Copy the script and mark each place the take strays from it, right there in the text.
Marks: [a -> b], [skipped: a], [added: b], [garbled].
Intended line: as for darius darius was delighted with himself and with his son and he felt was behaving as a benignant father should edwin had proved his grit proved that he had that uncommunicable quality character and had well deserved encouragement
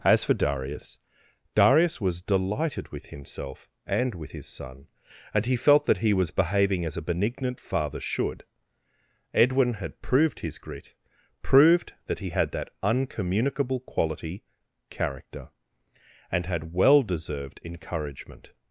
as for darius darius was delighted with himself and with his son and he felt [added: that he] was behaving as a benignant father should edwin had proved his grit proved that he had that uncommunicable quality character and had well deserved encouragement